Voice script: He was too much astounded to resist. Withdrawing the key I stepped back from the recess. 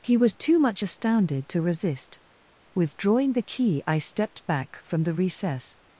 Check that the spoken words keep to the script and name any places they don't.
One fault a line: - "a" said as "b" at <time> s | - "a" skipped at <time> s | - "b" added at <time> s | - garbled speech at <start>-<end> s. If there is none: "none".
none